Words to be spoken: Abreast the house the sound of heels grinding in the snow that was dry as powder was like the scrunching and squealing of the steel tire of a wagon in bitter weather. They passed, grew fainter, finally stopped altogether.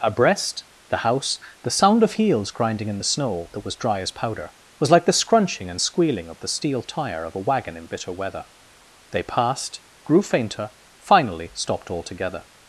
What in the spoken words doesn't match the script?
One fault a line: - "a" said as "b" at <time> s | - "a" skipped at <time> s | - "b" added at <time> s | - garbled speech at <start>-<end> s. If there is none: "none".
none